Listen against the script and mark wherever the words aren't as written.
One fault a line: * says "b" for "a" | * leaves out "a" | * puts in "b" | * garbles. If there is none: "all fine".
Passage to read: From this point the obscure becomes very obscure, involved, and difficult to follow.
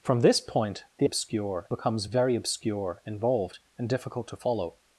all fine